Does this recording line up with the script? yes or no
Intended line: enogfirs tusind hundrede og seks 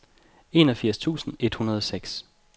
no